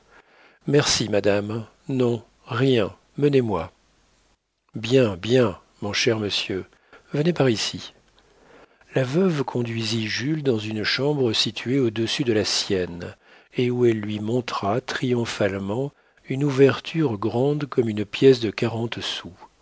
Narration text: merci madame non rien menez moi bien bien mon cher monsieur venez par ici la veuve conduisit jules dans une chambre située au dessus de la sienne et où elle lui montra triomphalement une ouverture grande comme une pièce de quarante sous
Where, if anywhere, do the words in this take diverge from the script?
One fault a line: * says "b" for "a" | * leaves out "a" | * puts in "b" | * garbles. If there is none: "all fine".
all fine